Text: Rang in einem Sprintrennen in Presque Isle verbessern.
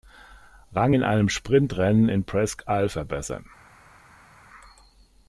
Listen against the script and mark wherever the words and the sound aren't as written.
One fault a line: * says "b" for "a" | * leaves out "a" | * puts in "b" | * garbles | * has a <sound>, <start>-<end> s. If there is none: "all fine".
all fine